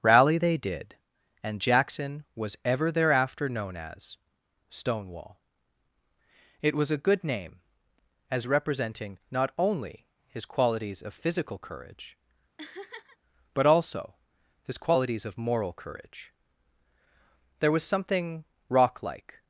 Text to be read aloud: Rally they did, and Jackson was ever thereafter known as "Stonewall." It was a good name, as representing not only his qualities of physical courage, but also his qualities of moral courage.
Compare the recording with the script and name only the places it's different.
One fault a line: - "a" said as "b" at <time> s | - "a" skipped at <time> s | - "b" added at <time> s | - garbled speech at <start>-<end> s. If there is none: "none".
- "There was something rock like" added at 17.6 s